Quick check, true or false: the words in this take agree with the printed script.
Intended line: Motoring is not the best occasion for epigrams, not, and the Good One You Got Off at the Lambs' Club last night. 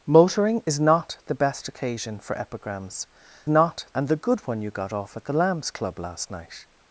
true